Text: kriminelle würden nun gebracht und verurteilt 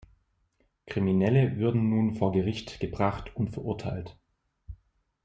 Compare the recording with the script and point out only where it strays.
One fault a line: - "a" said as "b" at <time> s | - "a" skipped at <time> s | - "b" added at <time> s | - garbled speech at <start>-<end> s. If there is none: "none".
- "vor gericht" added at 2.1 s